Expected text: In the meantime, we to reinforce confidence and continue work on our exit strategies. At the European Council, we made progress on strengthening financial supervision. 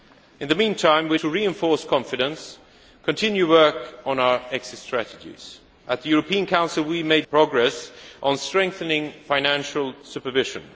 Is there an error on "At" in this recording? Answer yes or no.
no